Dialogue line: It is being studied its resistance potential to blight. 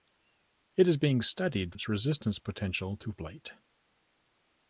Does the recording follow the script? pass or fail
pass